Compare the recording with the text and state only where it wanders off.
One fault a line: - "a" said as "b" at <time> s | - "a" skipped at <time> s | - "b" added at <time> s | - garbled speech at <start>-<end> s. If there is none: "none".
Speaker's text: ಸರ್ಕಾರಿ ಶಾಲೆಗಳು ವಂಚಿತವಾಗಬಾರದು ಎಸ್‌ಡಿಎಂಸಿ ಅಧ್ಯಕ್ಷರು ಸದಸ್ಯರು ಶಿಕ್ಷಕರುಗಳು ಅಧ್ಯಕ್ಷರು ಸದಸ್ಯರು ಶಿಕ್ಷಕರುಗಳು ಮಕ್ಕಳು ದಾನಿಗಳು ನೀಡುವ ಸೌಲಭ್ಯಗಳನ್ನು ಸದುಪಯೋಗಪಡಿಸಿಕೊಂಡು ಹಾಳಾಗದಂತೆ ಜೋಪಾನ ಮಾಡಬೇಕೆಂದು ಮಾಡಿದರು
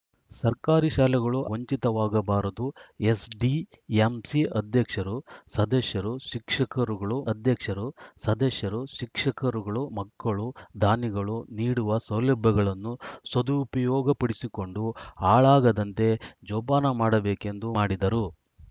none